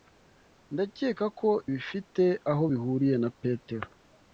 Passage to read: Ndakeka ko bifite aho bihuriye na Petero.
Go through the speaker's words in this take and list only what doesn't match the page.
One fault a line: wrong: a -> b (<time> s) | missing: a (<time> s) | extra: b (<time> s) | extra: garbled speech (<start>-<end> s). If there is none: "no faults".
no faults